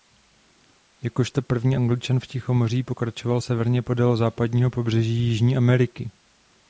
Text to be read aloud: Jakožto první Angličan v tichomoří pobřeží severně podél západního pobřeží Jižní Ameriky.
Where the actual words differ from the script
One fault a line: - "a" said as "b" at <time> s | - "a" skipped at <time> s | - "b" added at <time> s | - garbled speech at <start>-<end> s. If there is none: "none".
- "pobřeží" said as "pokračoval" at 2.8 s